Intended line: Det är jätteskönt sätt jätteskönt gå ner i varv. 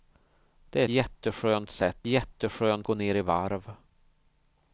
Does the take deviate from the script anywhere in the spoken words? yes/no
no